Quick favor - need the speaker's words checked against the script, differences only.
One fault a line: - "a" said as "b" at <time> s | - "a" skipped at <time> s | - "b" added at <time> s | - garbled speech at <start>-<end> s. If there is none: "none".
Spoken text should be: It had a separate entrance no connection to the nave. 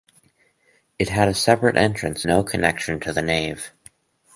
none